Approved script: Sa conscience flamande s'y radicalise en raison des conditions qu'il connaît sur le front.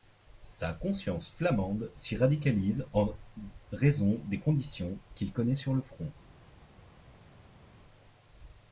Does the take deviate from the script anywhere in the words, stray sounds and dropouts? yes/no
no